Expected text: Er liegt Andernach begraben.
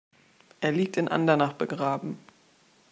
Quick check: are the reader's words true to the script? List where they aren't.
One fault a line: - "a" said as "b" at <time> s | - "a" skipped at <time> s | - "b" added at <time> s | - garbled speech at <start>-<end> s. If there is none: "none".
- "in" added at 1.0 s